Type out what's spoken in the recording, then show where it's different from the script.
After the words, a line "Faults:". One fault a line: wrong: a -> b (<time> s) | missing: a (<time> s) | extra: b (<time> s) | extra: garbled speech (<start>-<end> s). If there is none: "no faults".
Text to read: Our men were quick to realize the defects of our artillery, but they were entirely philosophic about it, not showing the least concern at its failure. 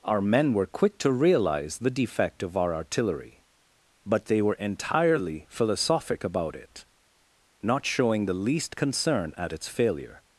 Our men were quick to realize the defect of our artillery, but they were entirely philosophic about it, not showing the least concern at its failure.
Faults:
wrong: defects -> defect (1.9 s)